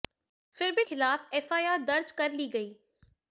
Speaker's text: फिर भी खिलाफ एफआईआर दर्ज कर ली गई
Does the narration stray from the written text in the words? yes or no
no